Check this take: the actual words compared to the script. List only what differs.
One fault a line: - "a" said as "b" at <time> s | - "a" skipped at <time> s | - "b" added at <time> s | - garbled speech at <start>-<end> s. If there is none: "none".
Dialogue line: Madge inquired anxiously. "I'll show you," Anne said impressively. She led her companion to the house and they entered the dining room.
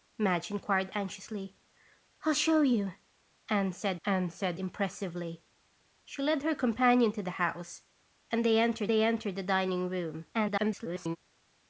- "Anne said" added at 4.1 s
- "they entered" added at 8.9 s
- garbled speech at 10.3-11.2 s